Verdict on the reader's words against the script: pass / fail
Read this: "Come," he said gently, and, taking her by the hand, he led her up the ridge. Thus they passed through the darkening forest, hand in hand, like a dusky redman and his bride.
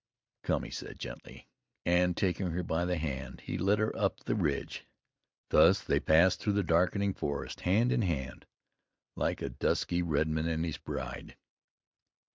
pass